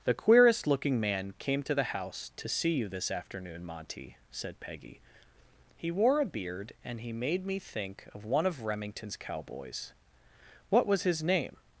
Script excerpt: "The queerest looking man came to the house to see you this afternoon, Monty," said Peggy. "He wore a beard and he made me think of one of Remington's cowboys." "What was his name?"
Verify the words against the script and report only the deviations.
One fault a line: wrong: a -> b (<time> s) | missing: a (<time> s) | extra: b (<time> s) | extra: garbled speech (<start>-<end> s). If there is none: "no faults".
no faults